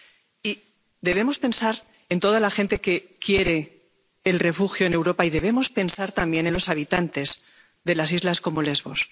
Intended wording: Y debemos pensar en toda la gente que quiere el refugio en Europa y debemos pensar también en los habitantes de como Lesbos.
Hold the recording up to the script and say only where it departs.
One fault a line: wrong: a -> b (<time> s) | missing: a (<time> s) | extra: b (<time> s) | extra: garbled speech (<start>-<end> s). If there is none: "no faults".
extra: las islas (8.0 s)